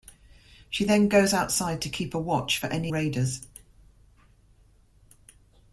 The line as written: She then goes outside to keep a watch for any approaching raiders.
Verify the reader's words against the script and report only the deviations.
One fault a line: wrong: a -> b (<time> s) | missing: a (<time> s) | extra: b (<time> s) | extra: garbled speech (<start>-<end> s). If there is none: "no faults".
missing: approaching (2.9 s)